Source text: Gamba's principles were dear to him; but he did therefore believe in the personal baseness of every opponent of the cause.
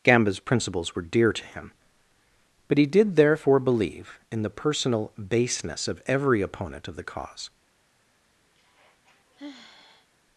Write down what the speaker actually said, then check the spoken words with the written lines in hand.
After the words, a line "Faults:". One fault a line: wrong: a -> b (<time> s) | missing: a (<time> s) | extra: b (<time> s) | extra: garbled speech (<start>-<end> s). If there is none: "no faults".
Gamba's principles were dear to him; but he did therefore believe in the personal baseness of every opponent of the cause.
Faults:
no faults